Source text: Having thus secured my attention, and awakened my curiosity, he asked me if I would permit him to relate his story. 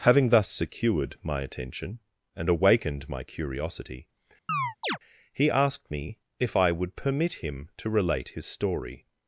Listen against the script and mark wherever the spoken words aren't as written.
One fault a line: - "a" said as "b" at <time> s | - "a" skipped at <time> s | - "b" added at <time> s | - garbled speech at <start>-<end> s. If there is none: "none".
none